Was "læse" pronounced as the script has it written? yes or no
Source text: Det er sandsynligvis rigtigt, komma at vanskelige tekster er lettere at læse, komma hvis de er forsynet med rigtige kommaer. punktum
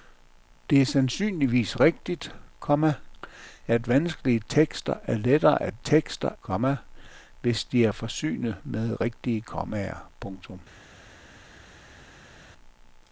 no